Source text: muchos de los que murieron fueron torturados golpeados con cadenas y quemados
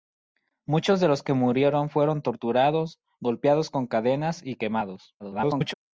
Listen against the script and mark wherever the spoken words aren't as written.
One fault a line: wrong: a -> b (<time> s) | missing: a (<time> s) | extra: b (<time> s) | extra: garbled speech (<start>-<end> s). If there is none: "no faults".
extra: garbled speech (5.2-5.7 s)